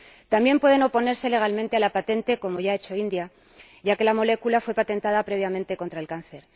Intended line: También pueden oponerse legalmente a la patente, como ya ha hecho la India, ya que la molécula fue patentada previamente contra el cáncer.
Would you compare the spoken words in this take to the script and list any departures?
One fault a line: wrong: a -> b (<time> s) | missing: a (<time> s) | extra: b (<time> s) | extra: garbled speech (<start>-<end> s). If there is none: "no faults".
no faults